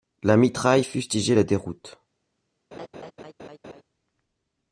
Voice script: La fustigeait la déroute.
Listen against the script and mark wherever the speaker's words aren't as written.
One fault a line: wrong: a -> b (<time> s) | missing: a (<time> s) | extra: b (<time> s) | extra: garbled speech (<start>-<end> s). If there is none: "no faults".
extra: mitraille (0.3 s)